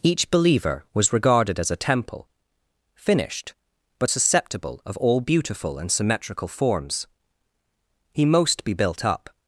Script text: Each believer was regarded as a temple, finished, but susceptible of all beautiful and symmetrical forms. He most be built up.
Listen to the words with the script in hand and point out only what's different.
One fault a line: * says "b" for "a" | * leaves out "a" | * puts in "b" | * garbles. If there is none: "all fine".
all fine